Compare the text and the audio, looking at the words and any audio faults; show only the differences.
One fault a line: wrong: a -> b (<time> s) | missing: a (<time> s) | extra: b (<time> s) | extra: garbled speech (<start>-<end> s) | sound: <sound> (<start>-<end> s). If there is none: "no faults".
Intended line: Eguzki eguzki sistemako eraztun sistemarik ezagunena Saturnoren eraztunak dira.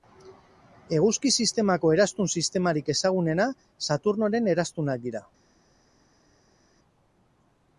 missing: eguzki (1.3 s)